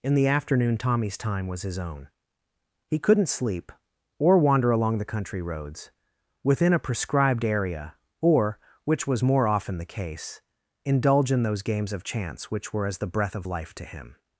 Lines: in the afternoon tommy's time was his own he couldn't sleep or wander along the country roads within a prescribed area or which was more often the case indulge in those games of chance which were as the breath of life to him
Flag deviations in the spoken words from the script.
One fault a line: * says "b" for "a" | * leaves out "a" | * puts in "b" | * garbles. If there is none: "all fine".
all fine